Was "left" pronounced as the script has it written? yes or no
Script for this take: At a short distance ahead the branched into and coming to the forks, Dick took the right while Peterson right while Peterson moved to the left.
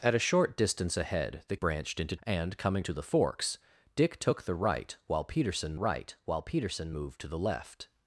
yes